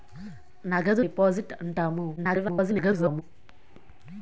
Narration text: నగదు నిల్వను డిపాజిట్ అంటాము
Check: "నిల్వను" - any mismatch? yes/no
yes